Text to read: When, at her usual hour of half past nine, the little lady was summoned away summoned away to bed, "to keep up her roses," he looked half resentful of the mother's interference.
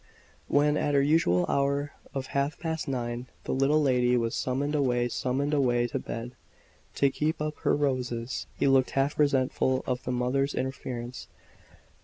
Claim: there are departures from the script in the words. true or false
false